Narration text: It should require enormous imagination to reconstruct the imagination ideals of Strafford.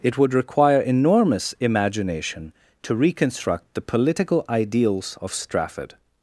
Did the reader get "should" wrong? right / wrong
wrong